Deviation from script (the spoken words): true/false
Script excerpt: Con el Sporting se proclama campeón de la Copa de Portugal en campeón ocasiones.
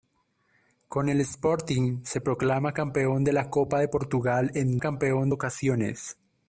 false